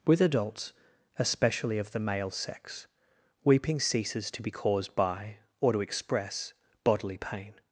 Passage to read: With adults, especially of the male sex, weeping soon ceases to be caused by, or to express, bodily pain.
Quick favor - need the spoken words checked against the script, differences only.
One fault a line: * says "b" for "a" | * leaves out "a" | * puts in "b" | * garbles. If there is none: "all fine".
* leaves out "soon"